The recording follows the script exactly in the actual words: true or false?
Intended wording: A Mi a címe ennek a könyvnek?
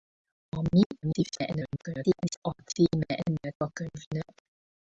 false